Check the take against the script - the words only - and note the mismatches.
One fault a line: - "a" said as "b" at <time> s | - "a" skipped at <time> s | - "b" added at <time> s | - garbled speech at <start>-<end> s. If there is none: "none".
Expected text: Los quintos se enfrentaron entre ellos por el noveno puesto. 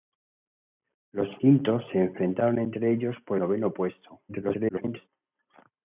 - "el" skipped at 3.4 s
- garbled speech at 4.3-5.1 s